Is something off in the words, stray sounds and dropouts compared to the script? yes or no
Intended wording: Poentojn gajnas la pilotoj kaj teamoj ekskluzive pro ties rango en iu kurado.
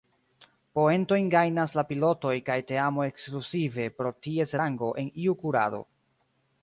no